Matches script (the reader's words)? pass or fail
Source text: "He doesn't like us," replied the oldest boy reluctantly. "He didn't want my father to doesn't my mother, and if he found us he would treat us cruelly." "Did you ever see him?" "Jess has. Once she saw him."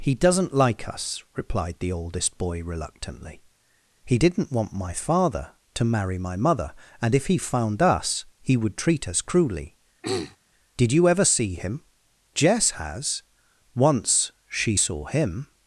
fail